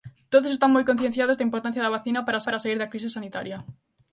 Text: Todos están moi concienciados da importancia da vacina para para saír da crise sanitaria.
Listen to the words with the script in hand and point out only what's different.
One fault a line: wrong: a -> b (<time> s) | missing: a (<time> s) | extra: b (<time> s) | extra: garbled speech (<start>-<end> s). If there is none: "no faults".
no faults